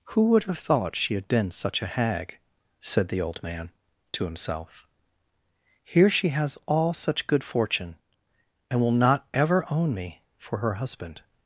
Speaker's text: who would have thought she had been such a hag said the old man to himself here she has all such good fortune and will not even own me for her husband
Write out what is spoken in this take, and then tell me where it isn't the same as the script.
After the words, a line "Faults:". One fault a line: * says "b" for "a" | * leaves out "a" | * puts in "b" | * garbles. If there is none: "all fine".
who would have thought she had been such a hag said the old man to himself here she has all such good fortune and will not ever own me for her husband
Faults:
* says "ever" for "even"